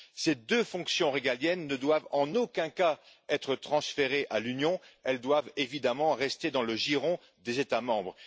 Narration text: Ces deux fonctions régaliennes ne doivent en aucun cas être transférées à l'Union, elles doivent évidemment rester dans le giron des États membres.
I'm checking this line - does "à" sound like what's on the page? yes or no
yes